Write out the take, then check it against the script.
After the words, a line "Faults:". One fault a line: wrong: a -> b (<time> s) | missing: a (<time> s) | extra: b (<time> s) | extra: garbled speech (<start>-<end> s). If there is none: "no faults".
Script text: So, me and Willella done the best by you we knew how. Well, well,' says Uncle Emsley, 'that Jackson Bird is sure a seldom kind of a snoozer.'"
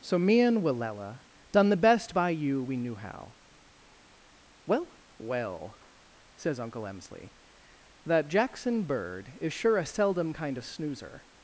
So, me and Willella done the best by you we knew how. Well, well,' says Uncle Emsley, 'that Jackson Bird is sure a seldom kind of snoozer.'"
Faults:
missing: a (10.6 s)